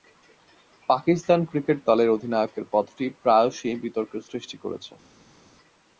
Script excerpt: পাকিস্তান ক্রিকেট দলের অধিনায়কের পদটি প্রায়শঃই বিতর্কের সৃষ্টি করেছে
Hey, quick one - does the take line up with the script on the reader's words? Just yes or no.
yes